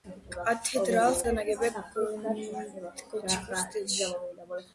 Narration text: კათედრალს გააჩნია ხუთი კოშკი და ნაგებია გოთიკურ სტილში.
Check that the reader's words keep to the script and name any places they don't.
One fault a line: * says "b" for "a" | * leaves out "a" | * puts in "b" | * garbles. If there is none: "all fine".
* leaves out "გააჩნია ხუთი კოშკი"